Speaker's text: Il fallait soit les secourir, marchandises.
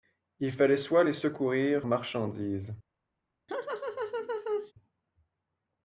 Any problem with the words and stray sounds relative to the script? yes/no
yes